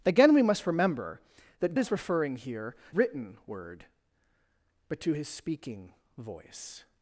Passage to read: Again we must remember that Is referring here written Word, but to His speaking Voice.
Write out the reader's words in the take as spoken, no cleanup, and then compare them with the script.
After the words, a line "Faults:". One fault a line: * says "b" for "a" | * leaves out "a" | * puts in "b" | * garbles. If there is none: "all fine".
Again we must remember that Is referring here written Word, but to His speaking Voice.
Faults:
all fine